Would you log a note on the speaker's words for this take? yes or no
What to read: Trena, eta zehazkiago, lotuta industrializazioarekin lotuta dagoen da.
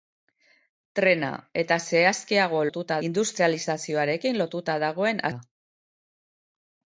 no